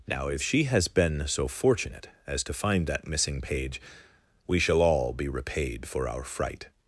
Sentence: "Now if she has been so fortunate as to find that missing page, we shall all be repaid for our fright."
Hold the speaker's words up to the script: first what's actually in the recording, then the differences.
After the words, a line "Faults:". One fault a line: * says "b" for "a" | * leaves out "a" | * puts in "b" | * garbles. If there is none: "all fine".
"Now if she has been so fortunate as to find that missing page, we shall all be repaid for our fright."
Faults:
all fine